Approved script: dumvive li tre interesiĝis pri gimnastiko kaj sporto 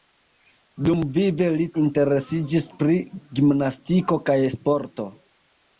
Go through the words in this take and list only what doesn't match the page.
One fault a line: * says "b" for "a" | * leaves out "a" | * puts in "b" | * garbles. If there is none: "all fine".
* leaves out "tre"